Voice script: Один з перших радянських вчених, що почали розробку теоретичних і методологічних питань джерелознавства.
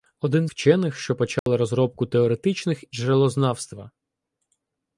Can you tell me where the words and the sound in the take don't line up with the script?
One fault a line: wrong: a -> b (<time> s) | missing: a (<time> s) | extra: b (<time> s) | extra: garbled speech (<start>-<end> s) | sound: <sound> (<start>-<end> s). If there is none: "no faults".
missing: з перших радянських (0.5 s)
sound: dropout (1.4-1.5 s)
missing: і методологічних питань (2.8 s)